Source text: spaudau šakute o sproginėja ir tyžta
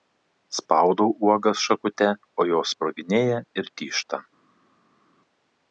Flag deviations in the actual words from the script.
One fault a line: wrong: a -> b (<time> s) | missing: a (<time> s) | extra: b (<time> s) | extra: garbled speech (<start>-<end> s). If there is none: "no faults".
extra: uogas (1.3 s)
extra: jos (2.5 s)